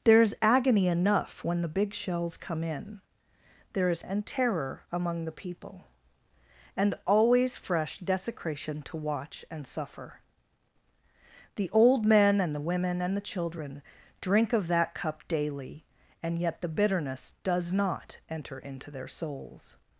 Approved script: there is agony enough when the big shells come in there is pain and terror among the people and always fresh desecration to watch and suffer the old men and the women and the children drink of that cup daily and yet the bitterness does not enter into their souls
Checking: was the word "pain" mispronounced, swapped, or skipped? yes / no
yes